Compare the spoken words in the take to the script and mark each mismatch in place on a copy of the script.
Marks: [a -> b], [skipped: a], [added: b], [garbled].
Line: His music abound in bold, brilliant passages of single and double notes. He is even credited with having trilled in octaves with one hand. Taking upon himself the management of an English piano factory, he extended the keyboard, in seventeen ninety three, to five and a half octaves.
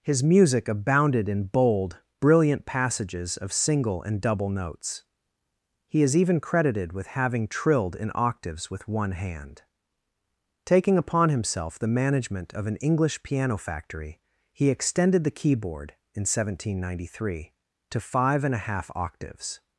His music [abound -> abounded] in bold, brilliant passages of single and double notes. He is even credited with having trilled in octaves with one hand. Taking upon himself the management of an English piano factory, he extended the keyboard, in seventeen ninety three, to five and a half octaves.